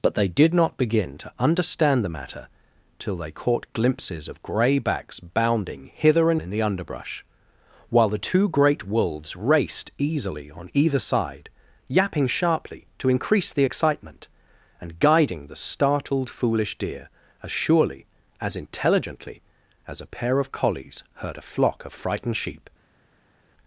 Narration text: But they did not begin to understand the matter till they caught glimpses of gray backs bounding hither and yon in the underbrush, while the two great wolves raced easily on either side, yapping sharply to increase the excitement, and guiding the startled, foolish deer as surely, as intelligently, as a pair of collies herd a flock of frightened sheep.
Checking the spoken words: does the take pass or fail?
fail